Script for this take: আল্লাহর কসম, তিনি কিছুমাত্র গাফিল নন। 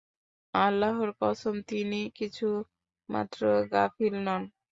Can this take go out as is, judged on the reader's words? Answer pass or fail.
pass